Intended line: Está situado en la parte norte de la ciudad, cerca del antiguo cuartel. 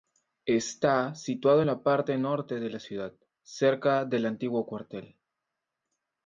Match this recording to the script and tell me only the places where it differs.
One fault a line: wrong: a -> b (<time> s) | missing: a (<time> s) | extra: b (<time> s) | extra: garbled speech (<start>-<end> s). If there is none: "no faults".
no faults